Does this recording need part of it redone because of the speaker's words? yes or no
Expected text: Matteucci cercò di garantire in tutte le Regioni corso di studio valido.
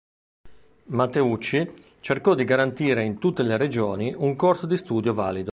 yes